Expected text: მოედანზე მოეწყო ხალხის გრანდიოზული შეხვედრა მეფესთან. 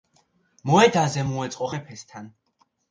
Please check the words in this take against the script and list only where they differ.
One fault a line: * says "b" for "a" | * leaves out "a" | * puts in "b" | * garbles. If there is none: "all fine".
* leaves out "ხალხის გრანდიოზული შეხვედრა"